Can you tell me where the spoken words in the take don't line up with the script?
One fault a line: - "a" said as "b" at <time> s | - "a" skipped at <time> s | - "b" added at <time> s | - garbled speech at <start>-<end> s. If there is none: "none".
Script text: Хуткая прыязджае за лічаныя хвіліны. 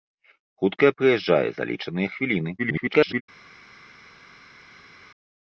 - garbled speech at 2.6-3.2 s